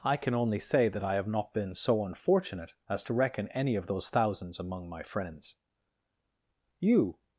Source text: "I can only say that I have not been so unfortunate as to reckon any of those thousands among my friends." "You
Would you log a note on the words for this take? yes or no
no